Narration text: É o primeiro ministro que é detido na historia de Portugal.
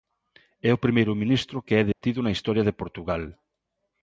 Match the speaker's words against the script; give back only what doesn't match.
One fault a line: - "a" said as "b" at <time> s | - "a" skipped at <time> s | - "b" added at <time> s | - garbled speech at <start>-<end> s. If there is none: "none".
none